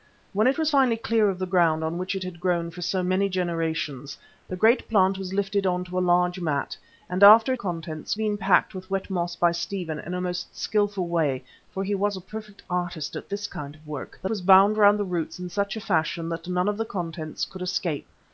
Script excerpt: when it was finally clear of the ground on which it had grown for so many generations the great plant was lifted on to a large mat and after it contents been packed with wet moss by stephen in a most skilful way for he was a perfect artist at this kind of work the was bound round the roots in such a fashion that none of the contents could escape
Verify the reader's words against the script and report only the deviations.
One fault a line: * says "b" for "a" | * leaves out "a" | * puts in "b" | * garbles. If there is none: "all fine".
all fine